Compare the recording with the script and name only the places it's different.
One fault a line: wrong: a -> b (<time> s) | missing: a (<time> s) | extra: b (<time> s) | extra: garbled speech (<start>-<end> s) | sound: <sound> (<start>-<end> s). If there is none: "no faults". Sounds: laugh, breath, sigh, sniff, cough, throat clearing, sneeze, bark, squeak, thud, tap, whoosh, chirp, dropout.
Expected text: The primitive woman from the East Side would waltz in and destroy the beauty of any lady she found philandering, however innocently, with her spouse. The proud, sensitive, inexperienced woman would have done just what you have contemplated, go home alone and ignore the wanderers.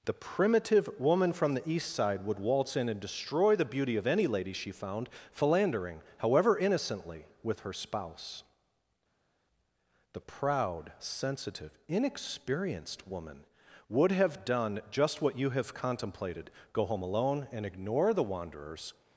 no faults